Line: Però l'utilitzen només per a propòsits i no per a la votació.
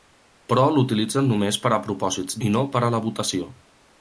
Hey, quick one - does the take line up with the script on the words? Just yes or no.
yes